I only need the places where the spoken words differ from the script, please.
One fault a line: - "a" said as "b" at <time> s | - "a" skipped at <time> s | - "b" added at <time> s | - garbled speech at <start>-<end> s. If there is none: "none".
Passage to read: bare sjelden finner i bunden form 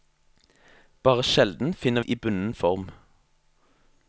none